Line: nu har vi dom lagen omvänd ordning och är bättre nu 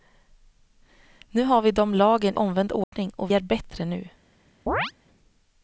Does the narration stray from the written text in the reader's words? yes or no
no